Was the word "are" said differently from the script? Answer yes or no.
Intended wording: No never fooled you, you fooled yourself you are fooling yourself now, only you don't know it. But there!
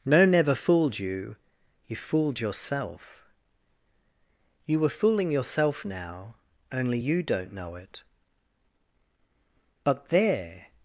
yes